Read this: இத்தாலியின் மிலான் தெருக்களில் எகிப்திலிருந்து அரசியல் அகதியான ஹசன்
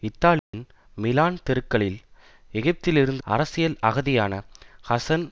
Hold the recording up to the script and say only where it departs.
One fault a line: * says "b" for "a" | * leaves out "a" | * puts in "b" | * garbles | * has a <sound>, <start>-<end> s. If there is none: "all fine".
* has a dropout, 0.4-0.5 s